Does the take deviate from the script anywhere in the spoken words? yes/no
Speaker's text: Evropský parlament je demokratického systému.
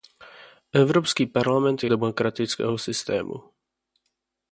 no